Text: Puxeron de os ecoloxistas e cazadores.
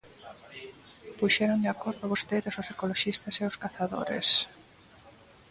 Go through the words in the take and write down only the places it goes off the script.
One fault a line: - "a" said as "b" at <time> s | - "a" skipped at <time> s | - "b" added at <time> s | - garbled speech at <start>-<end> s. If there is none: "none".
- "acordo vostedes" added at 1.8 s
- "os" added at 3.5 s